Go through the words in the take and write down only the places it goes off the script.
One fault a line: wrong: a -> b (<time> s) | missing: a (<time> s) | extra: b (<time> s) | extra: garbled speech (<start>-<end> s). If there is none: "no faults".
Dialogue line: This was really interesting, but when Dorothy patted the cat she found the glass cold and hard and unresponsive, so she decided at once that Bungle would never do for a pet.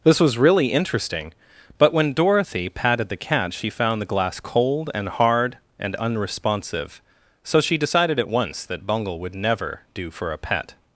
no faults